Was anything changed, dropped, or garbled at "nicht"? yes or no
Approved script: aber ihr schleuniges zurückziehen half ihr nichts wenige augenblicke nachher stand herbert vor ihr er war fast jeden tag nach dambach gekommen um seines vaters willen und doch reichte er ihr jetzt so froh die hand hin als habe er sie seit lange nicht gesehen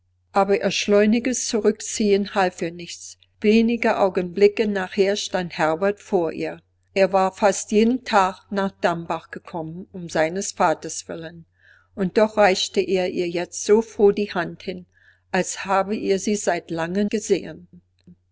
yes